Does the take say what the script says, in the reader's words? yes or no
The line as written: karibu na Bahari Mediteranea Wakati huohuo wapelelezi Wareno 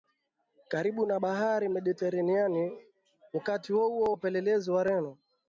yes